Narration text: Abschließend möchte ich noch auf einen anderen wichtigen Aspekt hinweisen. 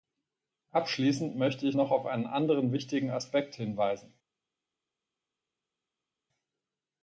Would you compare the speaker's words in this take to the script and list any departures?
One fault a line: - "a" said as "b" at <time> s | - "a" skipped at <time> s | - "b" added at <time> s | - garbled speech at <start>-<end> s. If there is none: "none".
none